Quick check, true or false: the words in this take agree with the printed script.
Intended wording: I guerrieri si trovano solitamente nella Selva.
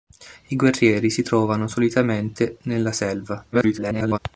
false